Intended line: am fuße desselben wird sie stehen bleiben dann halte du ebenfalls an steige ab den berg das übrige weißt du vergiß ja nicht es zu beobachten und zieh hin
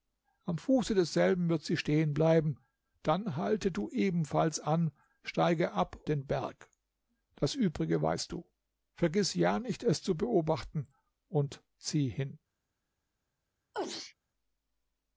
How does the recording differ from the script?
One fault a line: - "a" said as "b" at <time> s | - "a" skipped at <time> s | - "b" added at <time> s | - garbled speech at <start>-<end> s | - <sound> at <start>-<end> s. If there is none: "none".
- sneeze at 13.7-14.1 s